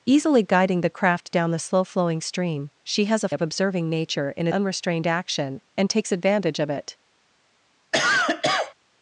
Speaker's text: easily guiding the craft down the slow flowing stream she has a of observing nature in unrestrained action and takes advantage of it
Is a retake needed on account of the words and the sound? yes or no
yes